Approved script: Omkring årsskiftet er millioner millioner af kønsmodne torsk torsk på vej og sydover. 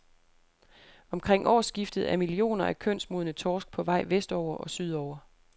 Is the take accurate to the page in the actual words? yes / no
no